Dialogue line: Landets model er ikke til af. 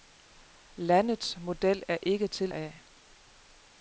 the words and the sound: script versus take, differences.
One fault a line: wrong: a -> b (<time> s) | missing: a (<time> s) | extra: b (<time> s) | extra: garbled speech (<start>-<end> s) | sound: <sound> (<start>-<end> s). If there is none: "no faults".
no faults